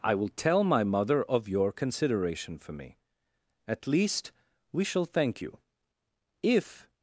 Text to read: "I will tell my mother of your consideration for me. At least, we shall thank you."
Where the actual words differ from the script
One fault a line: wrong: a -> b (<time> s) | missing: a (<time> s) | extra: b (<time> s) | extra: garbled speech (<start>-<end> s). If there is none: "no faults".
extra: If (6.4 s)